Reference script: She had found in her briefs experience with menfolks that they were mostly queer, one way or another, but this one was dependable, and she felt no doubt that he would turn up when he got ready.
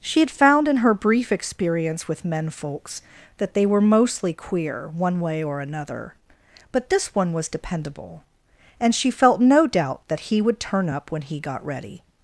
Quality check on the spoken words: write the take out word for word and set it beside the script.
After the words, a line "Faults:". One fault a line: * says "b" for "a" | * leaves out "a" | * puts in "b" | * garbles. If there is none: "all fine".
She had found in her brief experience with menfolks that they were mostly queer, one way or another, but this one was dependable, and she felt no doubt that he would turn up when he got ready.
Faults:
* says "brief" for "briefs"